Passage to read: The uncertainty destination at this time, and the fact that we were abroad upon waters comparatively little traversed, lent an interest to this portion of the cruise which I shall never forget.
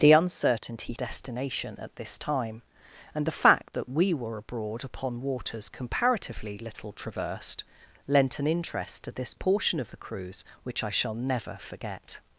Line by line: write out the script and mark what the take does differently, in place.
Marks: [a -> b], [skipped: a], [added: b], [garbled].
The uncertainty destination at this time, and the fact that we were abroad upon waters comparatively little traversed, lent an interest to this portion of the cruise which I shall never forget.